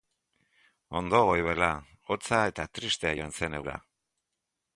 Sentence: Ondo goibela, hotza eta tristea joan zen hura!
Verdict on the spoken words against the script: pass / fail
pass